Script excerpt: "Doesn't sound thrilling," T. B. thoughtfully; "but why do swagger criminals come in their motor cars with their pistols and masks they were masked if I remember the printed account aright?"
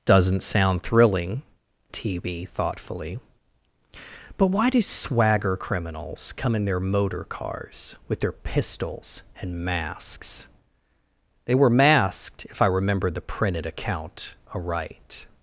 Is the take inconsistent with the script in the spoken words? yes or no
no